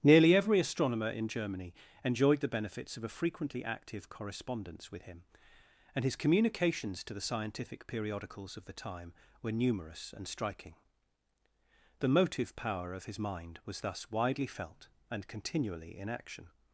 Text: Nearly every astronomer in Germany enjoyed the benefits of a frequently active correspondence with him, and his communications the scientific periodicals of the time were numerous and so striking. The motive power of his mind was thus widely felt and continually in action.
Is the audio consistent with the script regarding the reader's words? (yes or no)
no